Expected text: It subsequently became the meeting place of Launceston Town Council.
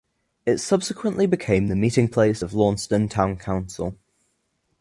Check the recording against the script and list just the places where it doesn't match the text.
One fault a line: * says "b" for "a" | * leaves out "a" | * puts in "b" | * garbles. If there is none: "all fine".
all fine